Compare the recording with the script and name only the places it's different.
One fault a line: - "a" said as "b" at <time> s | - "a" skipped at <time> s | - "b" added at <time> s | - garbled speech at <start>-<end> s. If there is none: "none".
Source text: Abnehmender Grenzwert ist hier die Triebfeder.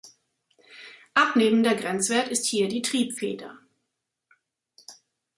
none